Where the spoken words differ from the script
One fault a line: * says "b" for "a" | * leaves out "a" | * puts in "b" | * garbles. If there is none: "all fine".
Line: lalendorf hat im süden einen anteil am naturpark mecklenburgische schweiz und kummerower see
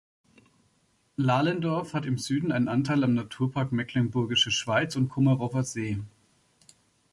all fine